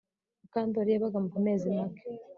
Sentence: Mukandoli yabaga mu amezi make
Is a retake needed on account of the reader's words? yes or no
no